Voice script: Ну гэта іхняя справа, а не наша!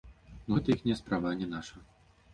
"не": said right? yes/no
yes